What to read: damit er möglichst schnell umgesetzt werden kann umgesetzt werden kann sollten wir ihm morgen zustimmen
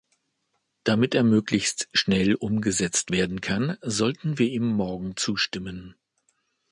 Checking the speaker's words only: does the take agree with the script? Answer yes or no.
no